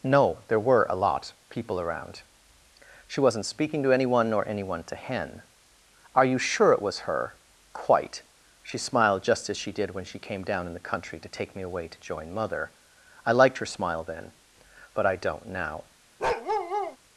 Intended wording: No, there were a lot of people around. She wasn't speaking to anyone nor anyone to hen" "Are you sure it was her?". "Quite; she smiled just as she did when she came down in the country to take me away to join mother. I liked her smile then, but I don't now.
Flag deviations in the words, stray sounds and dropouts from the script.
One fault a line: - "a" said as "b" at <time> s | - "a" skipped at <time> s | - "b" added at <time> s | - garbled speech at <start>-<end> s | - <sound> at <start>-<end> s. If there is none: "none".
- "of" skipped at 1.3 s
- bark at 16.2-17.0 s